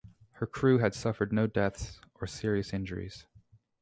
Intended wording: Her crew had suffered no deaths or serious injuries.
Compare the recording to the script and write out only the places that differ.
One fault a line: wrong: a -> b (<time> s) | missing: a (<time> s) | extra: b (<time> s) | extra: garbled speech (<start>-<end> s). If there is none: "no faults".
no faults